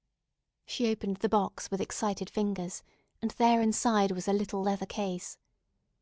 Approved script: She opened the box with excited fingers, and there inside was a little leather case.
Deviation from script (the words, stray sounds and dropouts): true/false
false